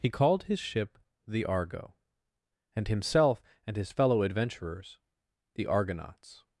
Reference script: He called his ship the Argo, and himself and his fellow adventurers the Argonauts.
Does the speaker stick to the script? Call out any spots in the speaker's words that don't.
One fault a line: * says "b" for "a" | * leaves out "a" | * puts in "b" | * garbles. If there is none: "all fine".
all fine